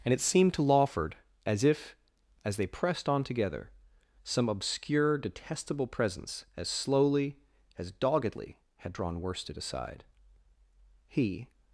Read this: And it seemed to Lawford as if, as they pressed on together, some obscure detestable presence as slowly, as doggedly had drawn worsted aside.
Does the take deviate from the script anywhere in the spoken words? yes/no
yes